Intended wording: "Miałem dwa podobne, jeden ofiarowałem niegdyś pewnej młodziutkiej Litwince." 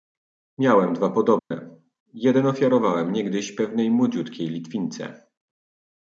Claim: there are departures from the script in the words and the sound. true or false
true